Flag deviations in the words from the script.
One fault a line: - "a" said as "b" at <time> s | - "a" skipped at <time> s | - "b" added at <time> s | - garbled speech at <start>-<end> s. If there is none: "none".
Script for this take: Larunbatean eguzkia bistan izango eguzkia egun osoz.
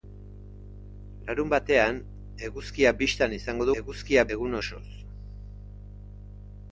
none